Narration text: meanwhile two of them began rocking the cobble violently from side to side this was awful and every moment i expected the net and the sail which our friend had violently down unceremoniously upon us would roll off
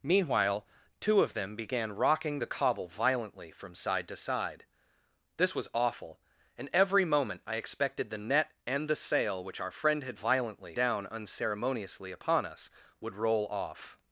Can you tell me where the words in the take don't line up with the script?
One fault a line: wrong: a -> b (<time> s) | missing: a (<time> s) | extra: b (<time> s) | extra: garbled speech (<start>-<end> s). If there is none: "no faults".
no faults